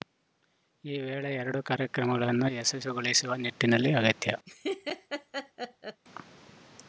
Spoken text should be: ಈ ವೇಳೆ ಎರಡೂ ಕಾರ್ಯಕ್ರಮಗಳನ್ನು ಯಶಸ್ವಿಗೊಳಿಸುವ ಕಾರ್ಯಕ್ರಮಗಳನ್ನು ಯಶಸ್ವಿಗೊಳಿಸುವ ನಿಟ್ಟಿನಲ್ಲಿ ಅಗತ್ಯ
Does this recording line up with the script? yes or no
no